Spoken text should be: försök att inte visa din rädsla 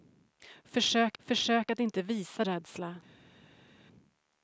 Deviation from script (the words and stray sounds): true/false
true